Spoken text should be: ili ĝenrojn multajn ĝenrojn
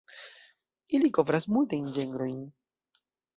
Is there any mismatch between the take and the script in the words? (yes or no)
yes